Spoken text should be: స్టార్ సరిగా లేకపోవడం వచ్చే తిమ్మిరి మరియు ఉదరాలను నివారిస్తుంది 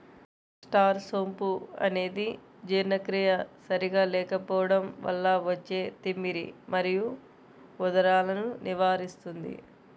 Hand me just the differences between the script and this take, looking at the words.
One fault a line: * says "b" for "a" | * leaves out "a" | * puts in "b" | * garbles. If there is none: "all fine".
* puts in "సోంపు అనేది జీర్ణక్రియ"
* puts in "వల్ల"